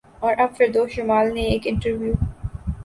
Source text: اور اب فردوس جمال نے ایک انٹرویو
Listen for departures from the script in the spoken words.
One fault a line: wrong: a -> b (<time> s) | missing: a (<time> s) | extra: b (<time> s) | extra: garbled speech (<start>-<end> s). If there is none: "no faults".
no faults